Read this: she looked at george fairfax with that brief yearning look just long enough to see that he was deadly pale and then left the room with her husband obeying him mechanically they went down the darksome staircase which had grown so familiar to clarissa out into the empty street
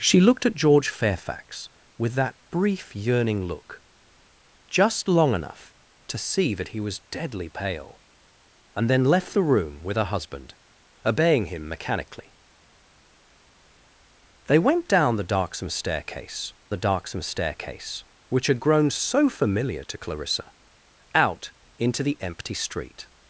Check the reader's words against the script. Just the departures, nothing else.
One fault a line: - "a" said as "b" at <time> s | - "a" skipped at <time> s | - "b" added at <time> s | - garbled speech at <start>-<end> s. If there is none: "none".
- "the darksome staircase" added at 16.7 s